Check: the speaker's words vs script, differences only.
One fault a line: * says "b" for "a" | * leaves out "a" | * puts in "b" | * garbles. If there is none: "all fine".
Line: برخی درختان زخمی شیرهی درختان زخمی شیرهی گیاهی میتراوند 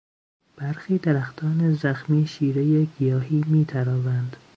* leaves out "درختان زخمی شیرهی"